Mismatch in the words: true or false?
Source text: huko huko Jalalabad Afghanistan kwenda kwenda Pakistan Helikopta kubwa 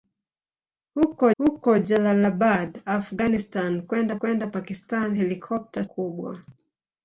false